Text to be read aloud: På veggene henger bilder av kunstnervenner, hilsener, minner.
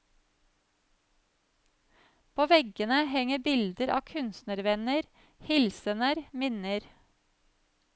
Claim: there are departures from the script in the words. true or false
false